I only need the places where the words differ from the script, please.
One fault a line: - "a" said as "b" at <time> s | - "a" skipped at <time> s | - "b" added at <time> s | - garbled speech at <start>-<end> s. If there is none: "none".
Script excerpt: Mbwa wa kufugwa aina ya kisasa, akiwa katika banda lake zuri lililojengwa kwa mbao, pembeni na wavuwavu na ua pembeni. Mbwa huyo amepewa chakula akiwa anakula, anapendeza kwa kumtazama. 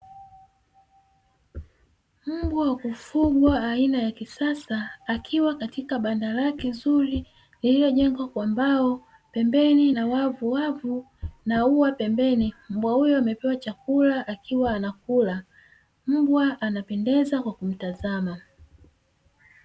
- "mbwa" added at 16.1 s